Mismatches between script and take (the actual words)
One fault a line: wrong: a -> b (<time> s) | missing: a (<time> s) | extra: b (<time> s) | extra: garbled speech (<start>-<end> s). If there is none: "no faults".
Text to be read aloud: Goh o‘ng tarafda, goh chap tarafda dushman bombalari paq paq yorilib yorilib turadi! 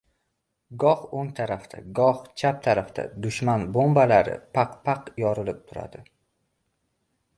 missing: yorilib (5.6 s)